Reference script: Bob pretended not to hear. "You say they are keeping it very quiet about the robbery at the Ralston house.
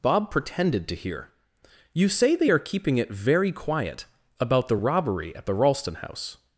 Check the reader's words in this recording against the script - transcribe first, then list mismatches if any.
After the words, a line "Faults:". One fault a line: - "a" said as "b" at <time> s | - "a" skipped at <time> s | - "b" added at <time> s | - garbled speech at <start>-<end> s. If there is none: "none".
Bob pretended to hear. "You say they are keeping it very quiet about the robbery at the Ralston house.
Faults:
- "not" skipped at 0.9 s